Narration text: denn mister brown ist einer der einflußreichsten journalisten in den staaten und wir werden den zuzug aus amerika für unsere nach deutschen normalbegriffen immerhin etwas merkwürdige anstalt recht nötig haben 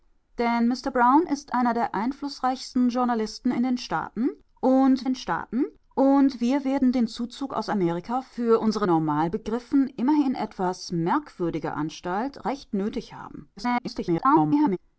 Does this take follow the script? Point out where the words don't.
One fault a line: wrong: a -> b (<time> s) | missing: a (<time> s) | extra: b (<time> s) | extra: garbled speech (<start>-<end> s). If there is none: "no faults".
extra: den staaten und (5.0 s)
missing: nach deutschen (8.9 s)
extra: garbled speech (13.6-14.8 s)